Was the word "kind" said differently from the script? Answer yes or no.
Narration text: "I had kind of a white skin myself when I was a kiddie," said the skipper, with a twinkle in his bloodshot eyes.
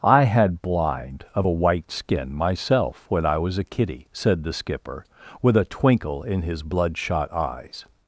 yes